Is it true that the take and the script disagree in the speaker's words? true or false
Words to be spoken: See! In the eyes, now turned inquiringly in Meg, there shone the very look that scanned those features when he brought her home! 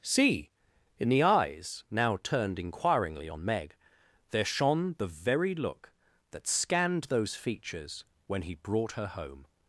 true